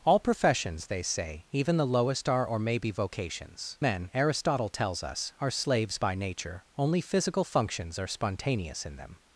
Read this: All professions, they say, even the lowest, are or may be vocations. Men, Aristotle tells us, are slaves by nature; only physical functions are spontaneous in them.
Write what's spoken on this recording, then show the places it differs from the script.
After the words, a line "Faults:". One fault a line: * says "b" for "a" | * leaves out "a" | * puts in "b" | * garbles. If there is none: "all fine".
All professions, they say, even the lowest, are or may be vocations. Men, Aristotle tells us, are slaves by nature; only physical functions are spontaneous in them.
Faults:
all fine